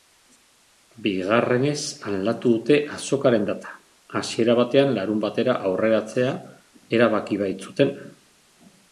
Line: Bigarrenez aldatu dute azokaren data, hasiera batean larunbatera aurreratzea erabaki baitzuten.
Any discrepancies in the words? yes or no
no